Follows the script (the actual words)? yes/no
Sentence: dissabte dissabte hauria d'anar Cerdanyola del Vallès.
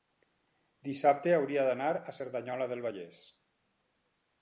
no